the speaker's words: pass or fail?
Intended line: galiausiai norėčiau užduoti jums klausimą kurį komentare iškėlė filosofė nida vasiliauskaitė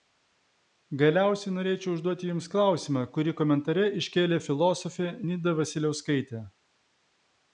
pass